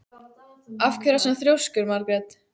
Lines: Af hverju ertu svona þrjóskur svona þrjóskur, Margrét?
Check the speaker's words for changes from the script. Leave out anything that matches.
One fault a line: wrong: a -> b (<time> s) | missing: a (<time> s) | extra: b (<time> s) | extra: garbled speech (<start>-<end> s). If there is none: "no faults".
missing: svona þrjóskur (1.9 s)